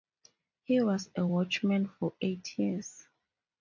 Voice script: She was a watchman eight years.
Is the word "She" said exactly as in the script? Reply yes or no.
no